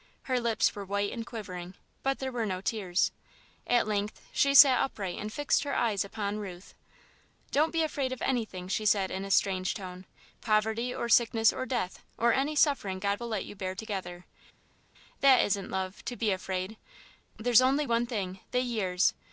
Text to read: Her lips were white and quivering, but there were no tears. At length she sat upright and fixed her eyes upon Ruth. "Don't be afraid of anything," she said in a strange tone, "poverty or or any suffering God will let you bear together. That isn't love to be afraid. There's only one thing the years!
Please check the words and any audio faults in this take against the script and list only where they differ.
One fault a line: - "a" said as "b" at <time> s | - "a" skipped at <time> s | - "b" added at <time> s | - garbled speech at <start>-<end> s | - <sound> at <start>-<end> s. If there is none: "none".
- "sickness or death" added at 11.1 s